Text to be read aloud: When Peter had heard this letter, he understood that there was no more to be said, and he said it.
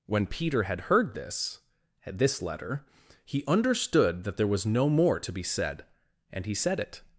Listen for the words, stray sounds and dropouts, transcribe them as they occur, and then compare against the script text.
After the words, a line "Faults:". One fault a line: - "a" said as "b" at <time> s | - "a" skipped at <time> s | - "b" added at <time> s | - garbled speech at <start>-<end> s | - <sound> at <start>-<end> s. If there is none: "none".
When Peter had heard this this letter, he understood that there was no more to be said, and he said it.
Faults:
- "this" added at 2.1 s